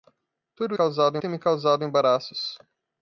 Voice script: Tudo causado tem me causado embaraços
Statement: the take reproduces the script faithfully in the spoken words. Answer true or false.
true